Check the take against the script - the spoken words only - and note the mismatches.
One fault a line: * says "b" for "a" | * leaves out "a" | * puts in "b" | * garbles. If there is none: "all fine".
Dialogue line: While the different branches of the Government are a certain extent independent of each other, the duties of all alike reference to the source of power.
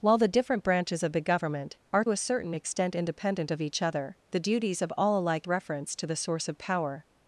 all fine